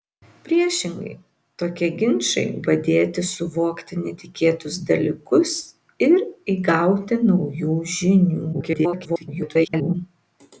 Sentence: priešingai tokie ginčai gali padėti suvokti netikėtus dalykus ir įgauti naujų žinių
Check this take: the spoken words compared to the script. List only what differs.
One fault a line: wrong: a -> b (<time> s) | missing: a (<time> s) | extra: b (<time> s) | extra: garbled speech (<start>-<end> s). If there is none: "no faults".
missing: gali (2.5 s)
extra: garbled speech (8.5-9.9 s)